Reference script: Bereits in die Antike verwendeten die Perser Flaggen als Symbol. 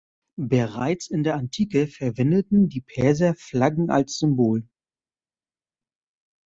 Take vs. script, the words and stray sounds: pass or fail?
fail